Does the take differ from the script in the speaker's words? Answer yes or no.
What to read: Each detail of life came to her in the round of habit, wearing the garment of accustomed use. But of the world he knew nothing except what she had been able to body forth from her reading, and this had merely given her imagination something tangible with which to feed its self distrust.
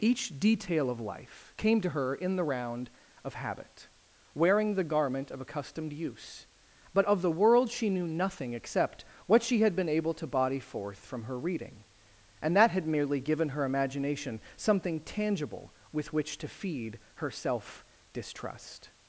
yes